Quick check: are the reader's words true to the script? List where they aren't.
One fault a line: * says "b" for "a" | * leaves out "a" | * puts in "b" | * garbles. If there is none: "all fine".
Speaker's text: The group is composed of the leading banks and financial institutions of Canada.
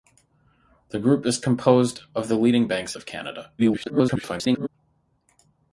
* leaves out "and financial institutions"
* garbles